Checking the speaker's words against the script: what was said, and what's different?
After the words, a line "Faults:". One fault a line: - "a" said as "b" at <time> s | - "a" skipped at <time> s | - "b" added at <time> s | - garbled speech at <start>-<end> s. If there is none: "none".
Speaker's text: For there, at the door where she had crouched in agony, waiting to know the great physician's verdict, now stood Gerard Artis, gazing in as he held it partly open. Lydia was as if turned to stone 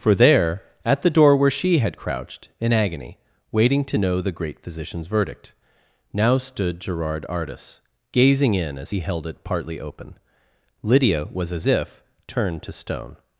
For there, at the door where she had crouched in agony, waiting to know the great physician's verdict, now stood Gerard Artis, gazing in as he held it partly open. Lydia was as if turned to stone
Faults:
none